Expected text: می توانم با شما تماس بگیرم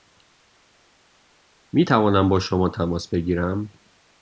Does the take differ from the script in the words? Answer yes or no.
no